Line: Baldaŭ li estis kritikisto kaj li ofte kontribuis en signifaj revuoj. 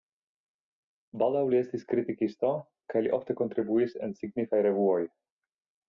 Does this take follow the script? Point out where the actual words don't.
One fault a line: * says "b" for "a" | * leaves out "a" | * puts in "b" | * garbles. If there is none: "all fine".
all fine